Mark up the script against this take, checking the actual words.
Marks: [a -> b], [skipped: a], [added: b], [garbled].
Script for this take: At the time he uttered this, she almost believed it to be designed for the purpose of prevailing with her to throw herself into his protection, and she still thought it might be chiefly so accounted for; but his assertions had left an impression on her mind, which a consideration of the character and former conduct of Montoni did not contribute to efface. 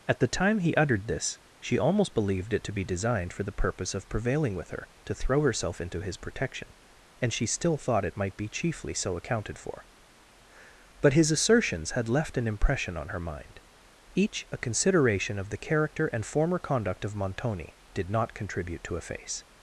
At the time he uttered this, she almost believed it to be designed for the purpose of prevailing with her to throw herself into his protection, and she still thought it might be chiefly so accounted for; but his assertions had left an impression on her mind, [which -> each] a consideration of the character and former conduct of Montoni did not contribute to efface.